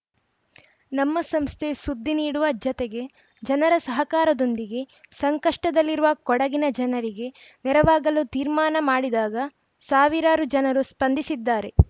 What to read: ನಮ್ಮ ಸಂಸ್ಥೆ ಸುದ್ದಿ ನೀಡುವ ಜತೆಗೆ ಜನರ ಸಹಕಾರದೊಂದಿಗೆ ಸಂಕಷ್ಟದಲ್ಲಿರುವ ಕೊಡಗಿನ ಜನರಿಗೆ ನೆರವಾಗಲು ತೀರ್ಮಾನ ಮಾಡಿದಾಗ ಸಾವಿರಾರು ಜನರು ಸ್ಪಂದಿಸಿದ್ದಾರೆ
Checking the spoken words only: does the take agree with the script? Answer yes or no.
yes